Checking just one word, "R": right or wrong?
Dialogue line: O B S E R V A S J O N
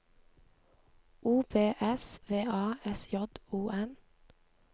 wrong